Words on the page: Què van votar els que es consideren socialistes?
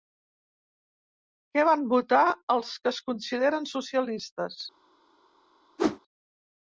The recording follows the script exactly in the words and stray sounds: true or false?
false